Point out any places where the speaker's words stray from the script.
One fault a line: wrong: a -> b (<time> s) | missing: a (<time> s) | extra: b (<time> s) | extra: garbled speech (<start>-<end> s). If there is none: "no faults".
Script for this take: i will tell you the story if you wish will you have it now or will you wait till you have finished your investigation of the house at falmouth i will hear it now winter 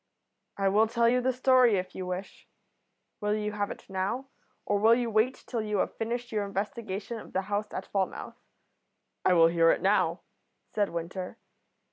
extra: said (10.7 s)